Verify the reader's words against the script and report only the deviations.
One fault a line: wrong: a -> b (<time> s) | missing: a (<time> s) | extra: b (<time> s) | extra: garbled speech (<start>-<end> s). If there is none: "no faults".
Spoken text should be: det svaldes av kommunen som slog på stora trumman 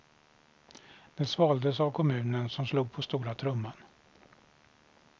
no faults